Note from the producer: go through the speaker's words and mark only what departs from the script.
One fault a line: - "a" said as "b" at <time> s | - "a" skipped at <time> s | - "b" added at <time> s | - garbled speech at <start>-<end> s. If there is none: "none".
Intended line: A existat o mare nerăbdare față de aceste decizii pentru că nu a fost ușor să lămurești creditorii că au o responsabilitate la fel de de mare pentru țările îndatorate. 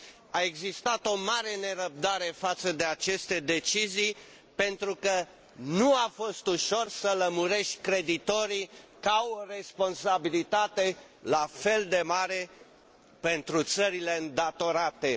- "de" skipped at 12.0 s